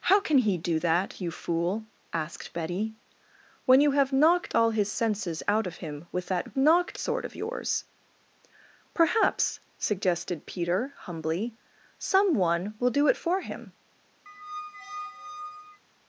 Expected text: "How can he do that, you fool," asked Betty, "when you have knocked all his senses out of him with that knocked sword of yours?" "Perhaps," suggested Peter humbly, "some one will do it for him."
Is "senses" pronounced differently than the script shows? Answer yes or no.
no